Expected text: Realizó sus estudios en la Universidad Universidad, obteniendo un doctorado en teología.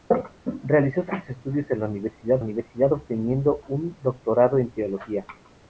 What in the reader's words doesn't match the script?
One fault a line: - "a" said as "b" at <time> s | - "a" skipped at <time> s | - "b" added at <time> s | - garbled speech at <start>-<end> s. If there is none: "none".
none